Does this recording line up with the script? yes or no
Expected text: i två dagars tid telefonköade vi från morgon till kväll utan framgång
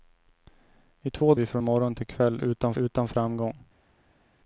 no